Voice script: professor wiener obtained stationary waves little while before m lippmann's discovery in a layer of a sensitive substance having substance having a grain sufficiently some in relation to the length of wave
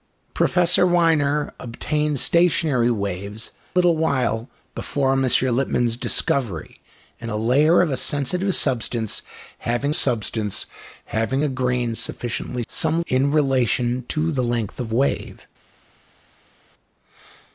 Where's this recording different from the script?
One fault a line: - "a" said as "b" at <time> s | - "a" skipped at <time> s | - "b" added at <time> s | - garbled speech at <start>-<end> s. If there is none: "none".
none